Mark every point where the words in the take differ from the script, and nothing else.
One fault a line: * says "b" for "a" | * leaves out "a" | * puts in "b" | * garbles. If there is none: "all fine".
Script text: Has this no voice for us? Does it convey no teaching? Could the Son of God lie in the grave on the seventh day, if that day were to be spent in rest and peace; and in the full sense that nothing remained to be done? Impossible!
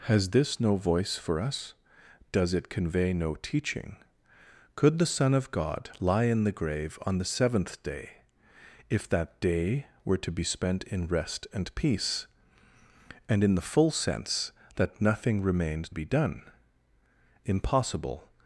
* leaves out "to"